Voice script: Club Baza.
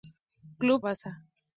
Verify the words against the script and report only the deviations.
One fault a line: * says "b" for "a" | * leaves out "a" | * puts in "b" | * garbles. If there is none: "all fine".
all fine